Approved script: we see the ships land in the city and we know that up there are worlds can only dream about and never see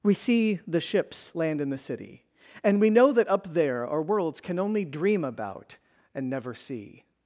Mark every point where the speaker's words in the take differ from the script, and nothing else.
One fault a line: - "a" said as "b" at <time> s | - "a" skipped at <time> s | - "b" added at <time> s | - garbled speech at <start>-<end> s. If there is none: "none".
none